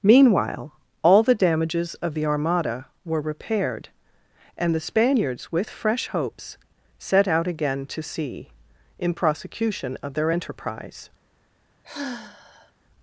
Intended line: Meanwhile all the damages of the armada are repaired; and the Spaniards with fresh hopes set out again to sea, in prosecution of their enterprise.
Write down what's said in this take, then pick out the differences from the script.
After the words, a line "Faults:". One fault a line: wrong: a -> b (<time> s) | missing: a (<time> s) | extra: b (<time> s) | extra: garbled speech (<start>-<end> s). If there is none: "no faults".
Meanwhile all the damages of the armada were repaired; and the Spaniards with fresh hopes set out again to sea, in prosecution of their enterprise.
Faults:
wrong: are -> were (3.0 s)